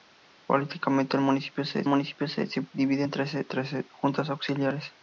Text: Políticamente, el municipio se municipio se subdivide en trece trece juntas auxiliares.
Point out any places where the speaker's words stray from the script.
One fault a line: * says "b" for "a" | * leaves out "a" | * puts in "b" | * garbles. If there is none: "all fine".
all fine